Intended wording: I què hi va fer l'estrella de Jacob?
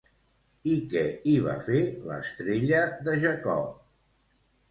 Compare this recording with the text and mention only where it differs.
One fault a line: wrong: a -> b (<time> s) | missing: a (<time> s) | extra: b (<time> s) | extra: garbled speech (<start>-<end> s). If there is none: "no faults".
no faults